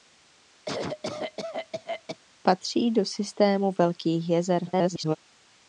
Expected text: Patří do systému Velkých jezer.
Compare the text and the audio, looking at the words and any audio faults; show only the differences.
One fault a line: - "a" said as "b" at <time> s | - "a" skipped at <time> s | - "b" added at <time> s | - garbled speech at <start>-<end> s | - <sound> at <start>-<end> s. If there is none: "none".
- cough at 0.6-2.2 s
- garbled speech at 4.7-5.2 s